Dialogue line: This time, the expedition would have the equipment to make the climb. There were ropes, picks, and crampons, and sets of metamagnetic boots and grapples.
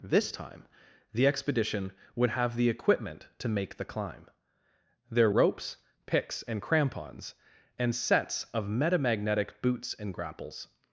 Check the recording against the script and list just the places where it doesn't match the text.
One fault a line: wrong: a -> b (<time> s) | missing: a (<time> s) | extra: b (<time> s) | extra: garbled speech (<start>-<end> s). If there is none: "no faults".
missing: were (5.3 s)